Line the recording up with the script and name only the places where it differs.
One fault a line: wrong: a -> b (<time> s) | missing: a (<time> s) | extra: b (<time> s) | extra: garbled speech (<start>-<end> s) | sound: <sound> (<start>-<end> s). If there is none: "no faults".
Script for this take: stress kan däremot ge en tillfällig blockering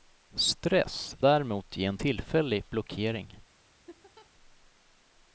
missing: kan (1.2 s)
sound: laugh (3.9-4.3 s)